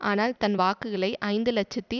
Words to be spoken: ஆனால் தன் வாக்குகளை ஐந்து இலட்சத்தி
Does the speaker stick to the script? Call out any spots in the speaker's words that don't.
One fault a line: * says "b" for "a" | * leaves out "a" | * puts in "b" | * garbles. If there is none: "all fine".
all fine